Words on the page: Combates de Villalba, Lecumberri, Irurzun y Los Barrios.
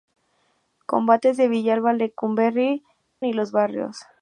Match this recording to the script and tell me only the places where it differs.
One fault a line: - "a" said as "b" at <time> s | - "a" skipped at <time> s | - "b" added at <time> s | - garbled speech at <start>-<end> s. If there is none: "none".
- "Irurzun" skipped at 2.8 s